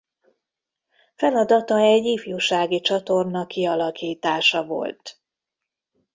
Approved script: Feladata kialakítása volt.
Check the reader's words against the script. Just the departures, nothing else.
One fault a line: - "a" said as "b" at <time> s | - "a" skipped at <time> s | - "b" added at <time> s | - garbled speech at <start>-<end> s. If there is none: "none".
- "egy ifjúsági csatorna" added at 1.8 s